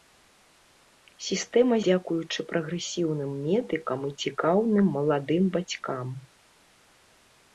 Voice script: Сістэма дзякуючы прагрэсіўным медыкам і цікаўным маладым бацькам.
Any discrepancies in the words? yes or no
no